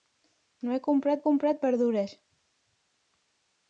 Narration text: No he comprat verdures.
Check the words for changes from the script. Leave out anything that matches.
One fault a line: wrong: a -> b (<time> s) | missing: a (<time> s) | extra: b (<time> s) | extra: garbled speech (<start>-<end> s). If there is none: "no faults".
extra: comprat (1.3 s)